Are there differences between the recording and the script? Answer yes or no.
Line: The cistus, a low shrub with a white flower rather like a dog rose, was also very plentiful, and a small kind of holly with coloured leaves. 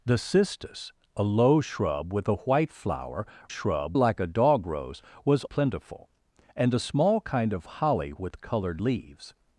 yes